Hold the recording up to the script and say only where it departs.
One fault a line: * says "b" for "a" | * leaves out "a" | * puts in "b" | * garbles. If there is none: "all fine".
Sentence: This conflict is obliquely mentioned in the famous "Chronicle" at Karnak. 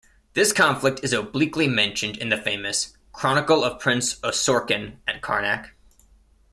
* puts in "of Prince Osorkon"